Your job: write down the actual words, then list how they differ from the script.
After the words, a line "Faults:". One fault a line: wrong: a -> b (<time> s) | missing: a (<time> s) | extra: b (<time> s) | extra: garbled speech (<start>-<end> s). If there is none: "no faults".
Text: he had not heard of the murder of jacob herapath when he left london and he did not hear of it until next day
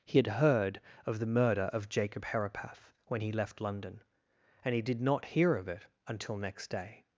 he had heard of the murder of jacob herapath when he left london and he did not hear of it until next day
Faults:
missing: not (0.3 s)